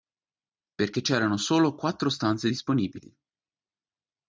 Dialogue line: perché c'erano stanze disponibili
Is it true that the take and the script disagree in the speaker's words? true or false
true